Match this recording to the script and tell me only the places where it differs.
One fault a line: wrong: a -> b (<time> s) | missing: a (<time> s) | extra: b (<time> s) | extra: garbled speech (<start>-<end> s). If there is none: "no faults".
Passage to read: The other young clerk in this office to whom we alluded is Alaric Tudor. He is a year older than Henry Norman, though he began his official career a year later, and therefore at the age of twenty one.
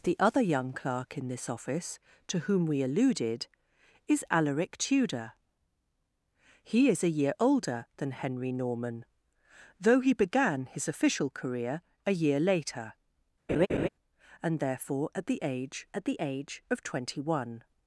extra: at the age (15.9 s)